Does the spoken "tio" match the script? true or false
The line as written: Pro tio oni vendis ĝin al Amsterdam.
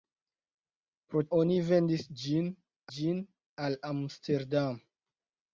false